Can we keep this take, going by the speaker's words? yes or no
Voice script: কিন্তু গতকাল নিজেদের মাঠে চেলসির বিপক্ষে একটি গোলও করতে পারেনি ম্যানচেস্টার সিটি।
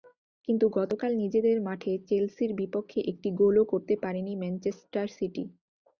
yes